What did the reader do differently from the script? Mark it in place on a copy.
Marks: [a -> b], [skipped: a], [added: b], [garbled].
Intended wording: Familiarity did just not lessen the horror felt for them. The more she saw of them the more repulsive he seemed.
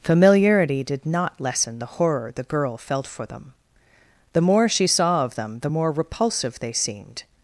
Familiarity did [skipped: just] not lessen the horror [added: the girl] felt for them. The more she saw of them the more repulsive [he -> they] seemed.